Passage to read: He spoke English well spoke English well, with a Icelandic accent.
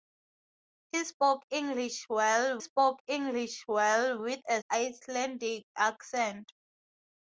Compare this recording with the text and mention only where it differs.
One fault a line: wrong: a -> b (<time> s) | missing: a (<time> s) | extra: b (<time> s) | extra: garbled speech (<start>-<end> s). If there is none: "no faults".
no faults